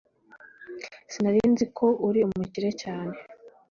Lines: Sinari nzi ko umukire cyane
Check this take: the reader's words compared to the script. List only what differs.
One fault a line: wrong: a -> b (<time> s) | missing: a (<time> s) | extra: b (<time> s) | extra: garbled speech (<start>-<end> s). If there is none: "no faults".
extra: uri (2.1 s)